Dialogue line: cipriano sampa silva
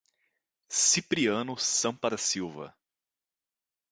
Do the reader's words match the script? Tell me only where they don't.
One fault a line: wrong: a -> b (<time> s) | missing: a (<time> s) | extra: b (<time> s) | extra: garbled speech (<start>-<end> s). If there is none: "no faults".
extra: da (2.0 s)